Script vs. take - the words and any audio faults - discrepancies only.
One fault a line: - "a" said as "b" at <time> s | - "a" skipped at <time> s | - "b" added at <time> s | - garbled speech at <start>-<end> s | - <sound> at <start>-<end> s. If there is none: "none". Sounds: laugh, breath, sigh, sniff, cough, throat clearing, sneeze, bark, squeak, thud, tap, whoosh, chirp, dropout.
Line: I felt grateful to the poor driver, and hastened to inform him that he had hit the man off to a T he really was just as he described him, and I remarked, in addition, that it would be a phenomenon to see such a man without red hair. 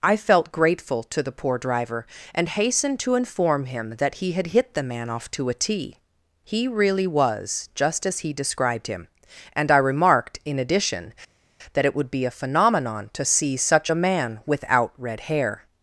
none